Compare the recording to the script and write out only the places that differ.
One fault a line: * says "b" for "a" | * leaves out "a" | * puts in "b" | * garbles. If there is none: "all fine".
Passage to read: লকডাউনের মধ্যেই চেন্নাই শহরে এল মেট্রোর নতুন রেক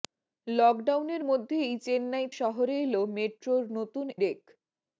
all fine